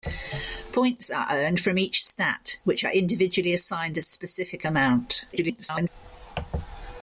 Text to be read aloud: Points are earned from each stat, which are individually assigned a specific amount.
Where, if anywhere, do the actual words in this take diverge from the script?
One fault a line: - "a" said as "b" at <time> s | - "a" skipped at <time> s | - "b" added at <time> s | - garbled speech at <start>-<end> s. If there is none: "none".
- garbled speech at 5.3-5.9 s